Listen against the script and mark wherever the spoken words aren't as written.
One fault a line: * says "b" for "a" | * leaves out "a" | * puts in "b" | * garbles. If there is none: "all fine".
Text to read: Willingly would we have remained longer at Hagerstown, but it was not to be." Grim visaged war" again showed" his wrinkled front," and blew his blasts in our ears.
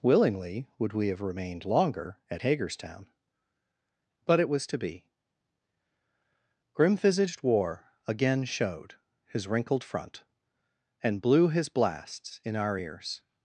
* leaves out "not"